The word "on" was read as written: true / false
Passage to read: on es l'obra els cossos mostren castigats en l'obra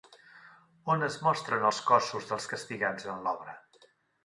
true